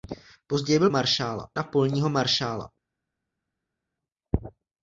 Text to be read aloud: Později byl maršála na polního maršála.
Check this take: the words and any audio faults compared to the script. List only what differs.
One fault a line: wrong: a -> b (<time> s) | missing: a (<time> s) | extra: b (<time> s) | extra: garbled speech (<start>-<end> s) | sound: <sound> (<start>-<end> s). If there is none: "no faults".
no faults